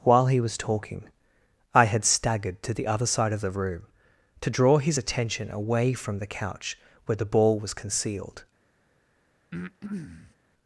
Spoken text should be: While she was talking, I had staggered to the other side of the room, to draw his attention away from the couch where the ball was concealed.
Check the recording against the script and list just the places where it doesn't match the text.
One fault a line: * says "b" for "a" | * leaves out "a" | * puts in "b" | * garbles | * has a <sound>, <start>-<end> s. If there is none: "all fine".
* says "he" for "she"
* has a breath, 9.5-10.4 s